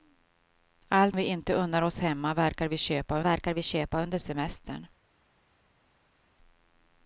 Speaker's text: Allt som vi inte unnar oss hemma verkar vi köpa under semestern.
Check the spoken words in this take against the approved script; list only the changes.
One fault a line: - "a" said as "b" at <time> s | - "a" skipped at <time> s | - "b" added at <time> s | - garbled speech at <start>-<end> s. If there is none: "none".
- "som" skipped at 1.1 s
- "verkar vi köpa" added at 3.2 s